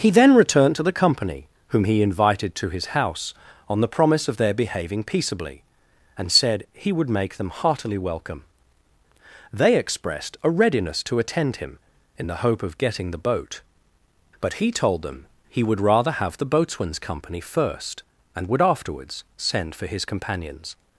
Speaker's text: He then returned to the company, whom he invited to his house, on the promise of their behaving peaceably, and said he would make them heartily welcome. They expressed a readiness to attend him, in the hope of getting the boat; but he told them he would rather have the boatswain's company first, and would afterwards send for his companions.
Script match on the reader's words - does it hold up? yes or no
yes